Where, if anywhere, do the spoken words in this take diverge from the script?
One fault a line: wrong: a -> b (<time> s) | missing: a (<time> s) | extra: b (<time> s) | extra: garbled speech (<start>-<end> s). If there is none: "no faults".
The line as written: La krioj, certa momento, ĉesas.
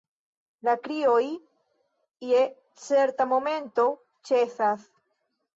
extra: je (2.3 s)